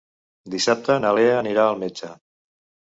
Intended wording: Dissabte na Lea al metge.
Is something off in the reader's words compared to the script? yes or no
yes